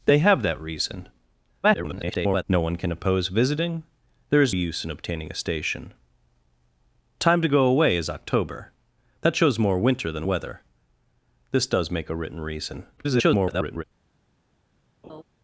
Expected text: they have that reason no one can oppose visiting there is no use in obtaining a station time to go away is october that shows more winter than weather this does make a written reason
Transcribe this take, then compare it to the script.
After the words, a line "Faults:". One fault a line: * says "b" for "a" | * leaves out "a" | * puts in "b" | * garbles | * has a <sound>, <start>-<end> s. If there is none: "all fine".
they have that reason [garbled] no one can oppose visiting there is use in obtaining a station time to go away is october that shows more winter than weather this does make a written reason [garbled]
Faults:
* garbles
* leaves out "no"
* garbles
* has a laugh, 15.0-15.2 s